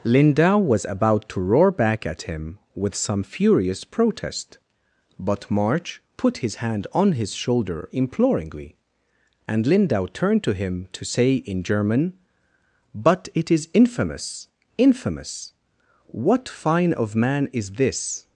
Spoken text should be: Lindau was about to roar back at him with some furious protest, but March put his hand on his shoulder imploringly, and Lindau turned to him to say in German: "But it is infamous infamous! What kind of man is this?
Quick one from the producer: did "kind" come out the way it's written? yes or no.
no